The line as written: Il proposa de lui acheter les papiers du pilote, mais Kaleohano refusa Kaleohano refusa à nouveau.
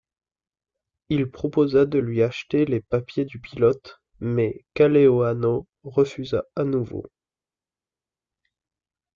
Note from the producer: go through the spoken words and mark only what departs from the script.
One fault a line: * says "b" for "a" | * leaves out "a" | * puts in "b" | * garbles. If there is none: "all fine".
* leaves out "Kaleohano refusa"